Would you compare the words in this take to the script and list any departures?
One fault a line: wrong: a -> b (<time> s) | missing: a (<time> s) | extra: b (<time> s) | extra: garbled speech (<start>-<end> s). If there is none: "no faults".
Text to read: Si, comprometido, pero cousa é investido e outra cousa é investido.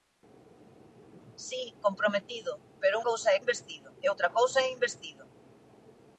no faults